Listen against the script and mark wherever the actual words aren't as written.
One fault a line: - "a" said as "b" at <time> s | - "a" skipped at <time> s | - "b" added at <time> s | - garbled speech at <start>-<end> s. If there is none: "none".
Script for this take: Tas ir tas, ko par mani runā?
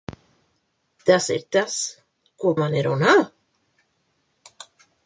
- "par" skipped at 2.5 s